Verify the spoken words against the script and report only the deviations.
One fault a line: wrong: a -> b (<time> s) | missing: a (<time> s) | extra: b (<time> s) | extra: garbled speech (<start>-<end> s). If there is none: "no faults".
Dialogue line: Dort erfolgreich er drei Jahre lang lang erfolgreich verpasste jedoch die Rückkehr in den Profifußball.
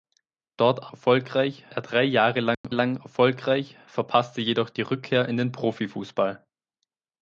no faults